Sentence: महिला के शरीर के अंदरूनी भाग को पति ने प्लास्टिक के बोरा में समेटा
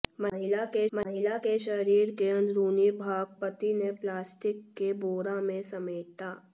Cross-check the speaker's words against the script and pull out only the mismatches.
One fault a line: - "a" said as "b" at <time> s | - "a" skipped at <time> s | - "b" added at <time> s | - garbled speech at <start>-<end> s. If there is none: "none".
- "महिला के" added at 0.9 s
- "को" skipped at 3.3 s